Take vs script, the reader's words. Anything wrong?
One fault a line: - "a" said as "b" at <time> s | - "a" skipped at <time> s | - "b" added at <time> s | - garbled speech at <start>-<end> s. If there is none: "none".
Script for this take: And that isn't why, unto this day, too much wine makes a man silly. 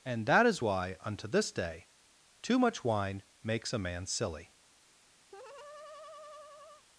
- "isn't" said as "is" at 0.5 s